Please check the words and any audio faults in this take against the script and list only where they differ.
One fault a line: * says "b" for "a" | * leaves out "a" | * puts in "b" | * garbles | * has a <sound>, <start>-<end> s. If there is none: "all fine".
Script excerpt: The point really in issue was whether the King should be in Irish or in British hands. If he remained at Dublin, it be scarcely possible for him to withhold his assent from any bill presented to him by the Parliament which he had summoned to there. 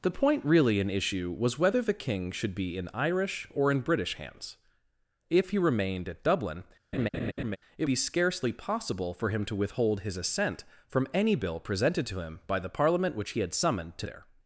* has a laugh, 6.9-7.6 s